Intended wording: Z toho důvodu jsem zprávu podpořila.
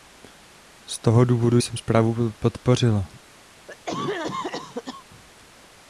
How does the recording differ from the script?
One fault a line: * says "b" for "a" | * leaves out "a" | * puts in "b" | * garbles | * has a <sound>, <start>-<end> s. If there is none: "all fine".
* has a cough, 3.7-5.0 s